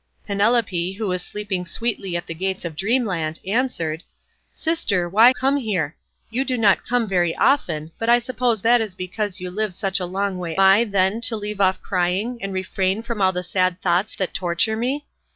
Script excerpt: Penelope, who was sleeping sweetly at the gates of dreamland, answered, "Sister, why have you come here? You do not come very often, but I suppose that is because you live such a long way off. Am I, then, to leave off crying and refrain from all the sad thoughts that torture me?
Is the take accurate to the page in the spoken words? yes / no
no